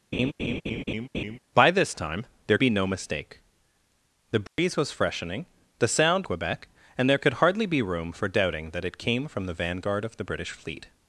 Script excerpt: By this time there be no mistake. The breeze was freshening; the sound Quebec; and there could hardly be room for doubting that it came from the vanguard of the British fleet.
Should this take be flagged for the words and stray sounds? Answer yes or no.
yes